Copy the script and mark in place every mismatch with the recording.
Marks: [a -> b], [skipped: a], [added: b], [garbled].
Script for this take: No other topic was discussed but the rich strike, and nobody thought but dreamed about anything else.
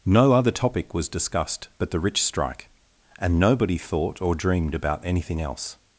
No other topic was discussed but the rich strike, and nobody thought [but -> or] dreamed about anything else.